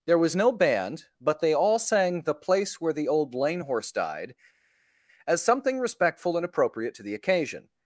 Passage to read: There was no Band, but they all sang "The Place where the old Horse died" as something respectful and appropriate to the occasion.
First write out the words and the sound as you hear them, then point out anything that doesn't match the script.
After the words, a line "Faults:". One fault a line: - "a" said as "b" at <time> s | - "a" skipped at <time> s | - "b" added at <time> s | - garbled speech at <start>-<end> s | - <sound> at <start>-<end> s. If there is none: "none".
There was no Band, but they all sang "The Place where the old lane Horse died" as something respectful and appropriate to the occasion.
Faults:
- "lane" added at 3.4 s